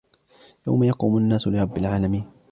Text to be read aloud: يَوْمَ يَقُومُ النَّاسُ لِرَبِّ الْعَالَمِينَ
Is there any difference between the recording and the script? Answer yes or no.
no